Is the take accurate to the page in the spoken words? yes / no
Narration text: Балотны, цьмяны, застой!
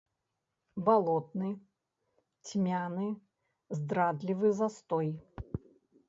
no